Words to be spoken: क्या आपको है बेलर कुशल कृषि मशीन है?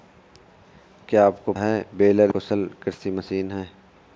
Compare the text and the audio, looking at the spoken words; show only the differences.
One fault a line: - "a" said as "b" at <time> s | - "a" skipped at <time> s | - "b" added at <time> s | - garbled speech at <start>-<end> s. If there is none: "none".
none